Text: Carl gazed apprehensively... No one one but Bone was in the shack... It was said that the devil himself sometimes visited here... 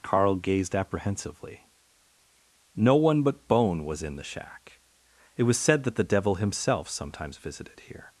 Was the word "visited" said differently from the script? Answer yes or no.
no